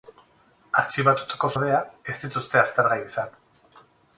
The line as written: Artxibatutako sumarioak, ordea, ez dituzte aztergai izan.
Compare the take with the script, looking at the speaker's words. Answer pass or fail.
fail